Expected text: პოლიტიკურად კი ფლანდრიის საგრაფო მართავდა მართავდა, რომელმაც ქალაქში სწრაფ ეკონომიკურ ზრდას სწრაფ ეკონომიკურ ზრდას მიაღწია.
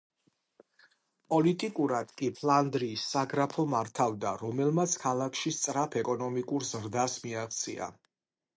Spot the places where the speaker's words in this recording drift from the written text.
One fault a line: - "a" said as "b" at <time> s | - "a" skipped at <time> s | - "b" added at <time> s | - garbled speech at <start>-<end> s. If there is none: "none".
- "მართავდა" skipped at 4.3 s
- "სწრაფ ეკონომიკურ ზრდას" skipped at 7.2 s